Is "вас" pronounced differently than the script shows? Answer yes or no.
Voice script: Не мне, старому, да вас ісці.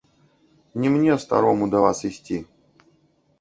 no